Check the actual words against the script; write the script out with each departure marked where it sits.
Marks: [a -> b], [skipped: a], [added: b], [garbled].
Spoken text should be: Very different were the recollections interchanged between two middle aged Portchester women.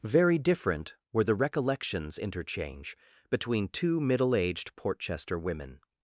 Very different were the recollections [interchanged -> interchange] between two middle aged Portchester women.